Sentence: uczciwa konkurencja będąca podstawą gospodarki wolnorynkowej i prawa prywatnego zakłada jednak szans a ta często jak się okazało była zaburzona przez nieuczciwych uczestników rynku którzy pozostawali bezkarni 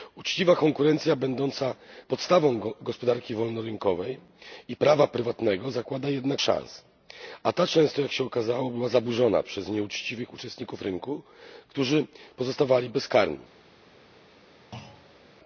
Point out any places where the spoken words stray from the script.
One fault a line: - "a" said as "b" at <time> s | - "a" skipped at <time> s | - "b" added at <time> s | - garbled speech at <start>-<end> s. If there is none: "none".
none